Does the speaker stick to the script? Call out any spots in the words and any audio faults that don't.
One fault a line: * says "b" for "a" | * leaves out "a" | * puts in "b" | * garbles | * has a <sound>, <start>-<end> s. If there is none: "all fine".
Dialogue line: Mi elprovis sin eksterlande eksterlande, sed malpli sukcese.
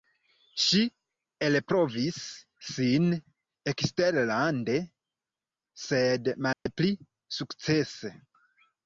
* says "Ŝi" for "Mi"
* leaves out "eksterlande"
* has a dropout, 6.5-6.7 s